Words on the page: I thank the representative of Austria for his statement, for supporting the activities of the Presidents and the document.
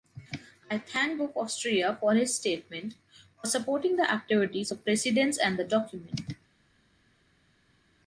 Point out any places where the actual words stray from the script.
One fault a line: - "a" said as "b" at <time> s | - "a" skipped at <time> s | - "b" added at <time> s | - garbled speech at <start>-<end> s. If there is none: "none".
- "the representative" skipped at 1.2 s
- "of" skipped at 4.7 s